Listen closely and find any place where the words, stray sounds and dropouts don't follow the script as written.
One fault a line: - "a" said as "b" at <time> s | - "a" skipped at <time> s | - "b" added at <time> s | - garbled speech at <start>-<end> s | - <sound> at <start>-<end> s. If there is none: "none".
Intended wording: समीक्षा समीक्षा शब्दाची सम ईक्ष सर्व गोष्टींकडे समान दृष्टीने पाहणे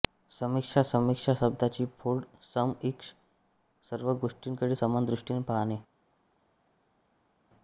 - "फोड" added at 2.0 s